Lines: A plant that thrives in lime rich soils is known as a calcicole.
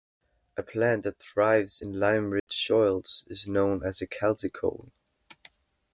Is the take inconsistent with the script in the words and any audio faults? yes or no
yes